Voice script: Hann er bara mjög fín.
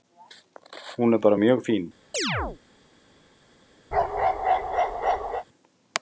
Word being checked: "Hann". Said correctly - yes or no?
no